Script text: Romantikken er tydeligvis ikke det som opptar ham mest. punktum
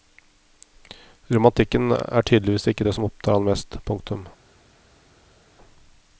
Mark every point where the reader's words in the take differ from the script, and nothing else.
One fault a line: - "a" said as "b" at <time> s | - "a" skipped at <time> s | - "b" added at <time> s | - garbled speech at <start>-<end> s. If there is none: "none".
none